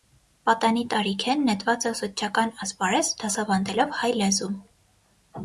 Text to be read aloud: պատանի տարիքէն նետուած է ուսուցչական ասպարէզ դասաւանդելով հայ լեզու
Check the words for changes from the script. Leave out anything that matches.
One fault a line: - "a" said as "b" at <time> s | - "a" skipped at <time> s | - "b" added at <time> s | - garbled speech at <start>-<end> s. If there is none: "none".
none